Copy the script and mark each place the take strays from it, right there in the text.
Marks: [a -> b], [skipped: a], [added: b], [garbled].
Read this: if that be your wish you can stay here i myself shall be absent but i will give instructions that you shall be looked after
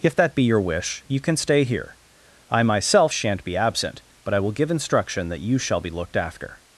if that be your wish you can stay here i myself [shall -> shan't] be absent but i will give [instructions -> instruction] that you shall be looked after